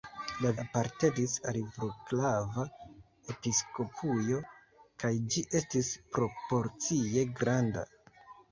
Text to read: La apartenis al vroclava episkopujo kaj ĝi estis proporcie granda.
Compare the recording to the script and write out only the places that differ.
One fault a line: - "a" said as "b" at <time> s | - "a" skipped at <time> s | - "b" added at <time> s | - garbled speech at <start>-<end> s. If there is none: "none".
none